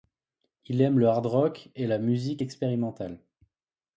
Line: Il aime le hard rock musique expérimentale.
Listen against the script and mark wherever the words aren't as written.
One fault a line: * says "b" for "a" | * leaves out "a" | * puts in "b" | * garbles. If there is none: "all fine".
* puts in "et la"